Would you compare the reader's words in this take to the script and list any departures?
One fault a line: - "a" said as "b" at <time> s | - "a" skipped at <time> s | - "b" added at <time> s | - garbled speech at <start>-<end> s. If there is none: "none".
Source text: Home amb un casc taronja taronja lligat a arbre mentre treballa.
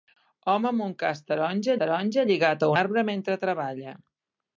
none